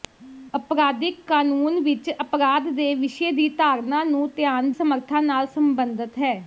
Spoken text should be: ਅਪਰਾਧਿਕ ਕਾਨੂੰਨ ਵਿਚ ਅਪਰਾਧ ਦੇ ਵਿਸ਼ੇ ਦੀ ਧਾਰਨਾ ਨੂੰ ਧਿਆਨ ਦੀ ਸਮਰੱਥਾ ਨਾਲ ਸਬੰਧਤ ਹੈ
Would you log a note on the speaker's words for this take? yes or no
yes